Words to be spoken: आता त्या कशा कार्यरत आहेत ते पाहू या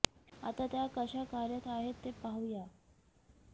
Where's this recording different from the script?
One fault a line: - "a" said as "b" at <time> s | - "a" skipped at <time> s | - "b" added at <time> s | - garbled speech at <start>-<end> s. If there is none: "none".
none